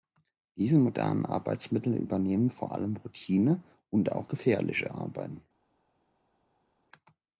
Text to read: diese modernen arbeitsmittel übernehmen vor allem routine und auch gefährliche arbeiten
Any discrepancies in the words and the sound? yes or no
no